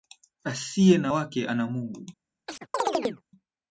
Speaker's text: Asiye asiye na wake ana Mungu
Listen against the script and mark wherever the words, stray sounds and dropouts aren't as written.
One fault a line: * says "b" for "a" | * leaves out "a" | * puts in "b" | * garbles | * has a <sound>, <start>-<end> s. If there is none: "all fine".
* leaves out "asiye"
* has a chirp, 2.5-3.2 s